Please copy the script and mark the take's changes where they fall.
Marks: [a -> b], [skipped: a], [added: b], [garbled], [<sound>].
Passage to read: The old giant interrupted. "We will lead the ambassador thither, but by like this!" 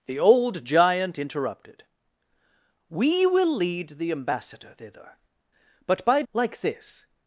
The old giant interrupted. "We will lead the ambassador thither, but by like this!"